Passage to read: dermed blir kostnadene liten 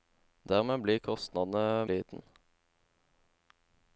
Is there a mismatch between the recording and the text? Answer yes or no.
no